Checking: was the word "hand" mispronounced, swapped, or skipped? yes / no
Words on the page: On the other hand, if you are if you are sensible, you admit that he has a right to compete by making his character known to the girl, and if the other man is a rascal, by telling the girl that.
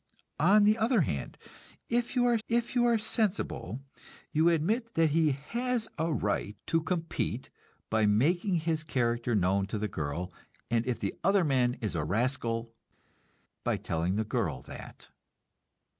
no